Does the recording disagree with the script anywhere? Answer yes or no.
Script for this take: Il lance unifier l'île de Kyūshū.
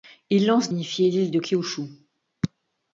no